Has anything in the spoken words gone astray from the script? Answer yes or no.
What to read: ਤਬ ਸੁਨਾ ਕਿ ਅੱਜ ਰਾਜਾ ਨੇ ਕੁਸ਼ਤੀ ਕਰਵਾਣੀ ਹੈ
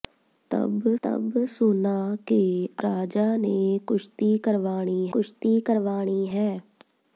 yes